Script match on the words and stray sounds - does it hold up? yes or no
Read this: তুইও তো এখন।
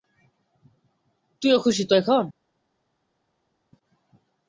no